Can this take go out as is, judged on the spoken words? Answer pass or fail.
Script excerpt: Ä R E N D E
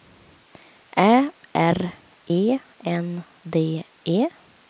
pass